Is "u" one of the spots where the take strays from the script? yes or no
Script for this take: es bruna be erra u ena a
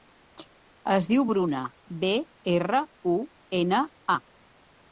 no